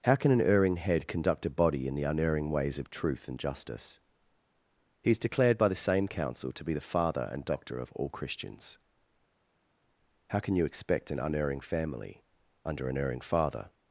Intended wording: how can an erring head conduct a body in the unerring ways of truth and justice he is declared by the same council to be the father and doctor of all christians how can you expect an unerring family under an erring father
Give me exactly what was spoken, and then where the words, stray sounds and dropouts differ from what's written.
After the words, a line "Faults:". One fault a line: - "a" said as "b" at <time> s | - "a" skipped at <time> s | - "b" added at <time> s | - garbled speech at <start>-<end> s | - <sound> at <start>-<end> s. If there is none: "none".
how can an erring head conduct a body in the unerring ways of truth and justice he is declared by the same council to be the father and doctor of all christians how can you expect an unerring family under an erring father
Faults:
none